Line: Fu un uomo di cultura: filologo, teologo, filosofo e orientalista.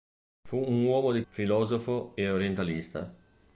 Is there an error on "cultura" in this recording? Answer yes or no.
yes